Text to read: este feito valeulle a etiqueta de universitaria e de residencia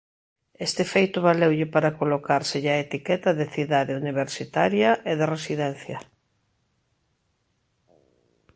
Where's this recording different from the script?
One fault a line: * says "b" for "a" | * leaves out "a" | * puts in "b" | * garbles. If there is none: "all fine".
* puts in "para colocárselle"
* puts in "cidade"